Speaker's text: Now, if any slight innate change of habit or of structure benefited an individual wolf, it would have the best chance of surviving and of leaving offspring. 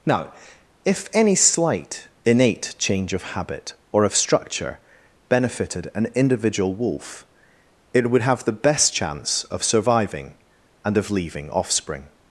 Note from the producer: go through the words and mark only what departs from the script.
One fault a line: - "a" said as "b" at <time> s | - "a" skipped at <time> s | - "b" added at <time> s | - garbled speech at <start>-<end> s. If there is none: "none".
none